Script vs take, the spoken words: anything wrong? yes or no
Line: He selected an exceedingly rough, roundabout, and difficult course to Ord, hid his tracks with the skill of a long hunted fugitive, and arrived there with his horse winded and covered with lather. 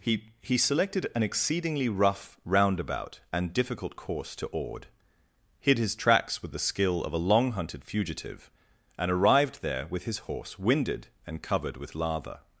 yes